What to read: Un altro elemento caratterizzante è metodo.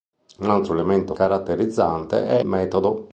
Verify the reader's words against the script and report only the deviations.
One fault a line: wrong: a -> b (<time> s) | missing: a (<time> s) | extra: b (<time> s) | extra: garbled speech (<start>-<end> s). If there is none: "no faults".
no faults